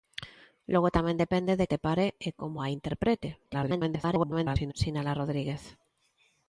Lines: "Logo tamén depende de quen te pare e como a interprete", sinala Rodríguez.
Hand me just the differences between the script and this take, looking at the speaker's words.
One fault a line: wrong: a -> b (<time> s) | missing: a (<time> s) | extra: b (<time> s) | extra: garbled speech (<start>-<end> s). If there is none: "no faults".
missing: quen (1.7 s)
extra: garbled speech (3.4-4.7 s)